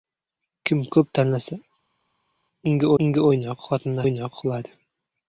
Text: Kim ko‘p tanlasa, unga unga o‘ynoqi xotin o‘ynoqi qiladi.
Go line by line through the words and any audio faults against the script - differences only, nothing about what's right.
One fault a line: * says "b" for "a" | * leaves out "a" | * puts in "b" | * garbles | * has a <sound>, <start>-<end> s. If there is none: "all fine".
all fine